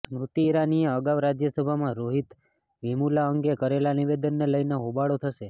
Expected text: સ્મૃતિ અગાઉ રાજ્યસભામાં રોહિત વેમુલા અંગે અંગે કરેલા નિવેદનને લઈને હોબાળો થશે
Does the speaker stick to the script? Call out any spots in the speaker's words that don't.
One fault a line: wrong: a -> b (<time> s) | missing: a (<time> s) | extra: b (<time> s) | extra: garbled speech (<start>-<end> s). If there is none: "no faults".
extra: ઈરાનીએ (0.4 s)
missing: અંગે (3.6 s)